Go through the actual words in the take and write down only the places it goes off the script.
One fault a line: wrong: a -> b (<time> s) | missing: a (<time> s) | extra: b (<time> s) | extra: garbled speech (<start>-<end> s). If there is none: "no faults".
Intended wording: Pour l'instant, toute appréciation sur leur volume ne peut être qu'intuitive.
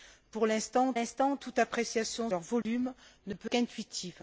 extra: l'instant (0.9 s)
missing: sur (2.3 s)
missing: être (3.5 s)